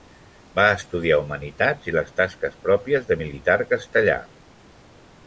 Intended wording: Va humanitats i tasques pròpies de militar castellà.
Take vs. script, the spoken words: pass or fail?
fail